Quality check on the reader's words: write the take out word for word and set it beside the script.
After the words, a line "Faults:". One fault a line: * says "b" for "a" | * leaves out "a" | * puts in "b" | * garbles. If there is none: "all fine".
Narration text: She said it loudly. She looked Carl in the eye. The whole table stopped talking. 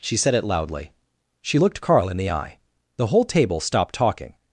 She said it loudly. She looked Carl in the eye. The whole table stopped talking.
Faults:
all fine